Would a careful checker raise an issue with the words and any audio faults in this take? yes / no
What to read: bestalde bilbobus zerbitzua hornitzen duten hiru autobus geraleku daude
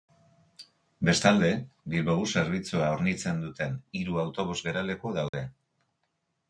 yes